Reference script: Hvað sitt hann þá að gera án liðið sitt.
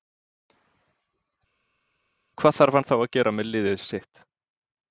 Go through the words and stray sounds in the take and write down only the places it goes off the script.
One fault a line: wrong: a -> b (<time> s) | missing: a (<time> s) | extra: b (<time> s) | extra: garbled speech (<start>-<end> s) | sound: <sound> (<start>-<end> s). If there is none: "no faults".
wrong: sitt -> þarf (2.6 s)
wrong: án -> með (3.4 s)